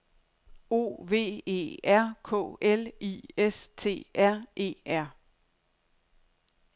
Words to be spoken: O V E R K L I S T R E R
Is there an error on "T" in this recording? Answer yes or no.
no